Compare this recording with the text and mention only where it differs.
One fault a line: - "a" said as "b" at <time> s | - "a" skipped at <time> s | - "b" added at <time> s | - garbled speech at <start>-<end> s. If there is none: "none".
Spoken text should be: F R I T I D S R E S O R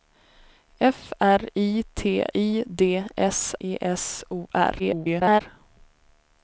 - "R" skipped at 3.5 s
- garbled speech at 4.8-5.4 s